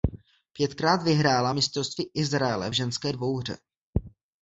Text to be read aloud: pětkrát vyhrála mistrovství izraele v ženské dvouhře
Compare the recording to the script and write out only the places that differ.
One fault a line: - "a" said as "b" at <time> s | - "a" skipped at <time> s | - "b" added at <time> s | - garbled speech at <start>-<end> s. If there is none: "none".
none